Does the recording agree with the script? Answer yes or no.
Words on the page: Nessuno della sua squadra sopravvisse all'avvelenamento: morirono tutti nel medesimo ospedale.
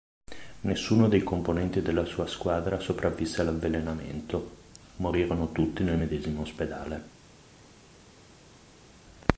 no